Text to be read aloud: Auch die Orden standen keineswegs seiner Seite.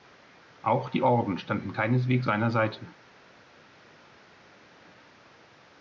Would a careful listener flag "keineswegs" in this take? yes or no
no